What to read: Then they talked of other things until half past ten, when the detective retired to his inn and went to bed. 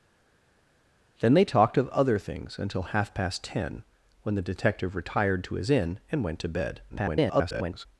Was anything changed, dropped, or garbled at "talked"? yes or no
no